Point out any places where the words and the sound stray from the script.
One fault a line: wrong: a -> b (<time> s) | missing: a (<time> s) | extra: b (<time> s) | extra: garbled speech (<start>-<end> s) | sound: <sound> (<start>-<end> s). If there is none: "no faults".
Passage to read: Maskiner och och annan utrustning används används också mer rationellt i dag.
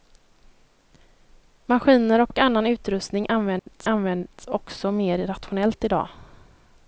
sound: dropout (3.6-3.7 s)